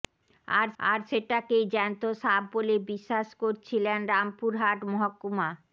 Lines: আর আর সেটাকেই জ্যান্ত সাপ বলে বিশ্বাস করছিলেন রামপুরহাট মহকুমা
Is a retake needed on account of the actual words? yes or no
no